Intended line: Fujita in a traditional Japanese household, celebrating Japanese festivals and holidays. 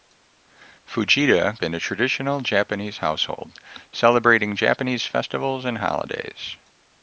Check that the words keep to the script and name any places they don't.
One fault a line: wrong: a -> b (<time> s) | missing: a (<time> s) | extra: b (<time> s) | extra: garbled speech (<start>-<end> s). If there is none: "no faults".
no faults